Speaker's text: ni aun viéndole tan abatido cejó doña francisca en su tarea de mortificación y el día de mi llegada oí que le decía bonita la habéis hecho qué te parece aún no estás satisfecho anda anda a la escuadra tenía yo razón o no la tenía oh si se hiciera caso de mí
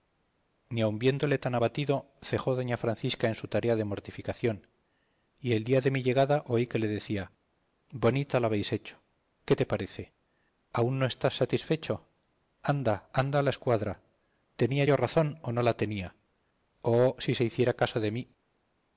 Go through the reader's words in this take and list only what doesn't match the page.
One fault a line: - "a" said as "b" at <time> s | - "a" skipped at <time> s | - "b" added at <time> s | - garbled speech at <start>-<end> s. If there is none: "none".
none